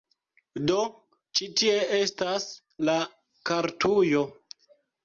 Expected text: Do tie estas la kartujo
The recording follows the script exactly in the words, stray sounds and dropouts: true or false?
false